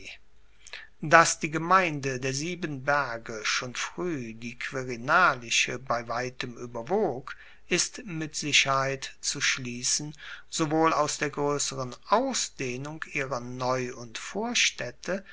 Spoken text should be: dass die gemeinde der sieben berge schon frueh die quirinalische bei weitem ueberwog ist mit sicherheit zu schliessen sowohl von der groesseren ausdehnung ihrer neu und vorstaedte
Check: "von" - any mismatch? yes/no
yes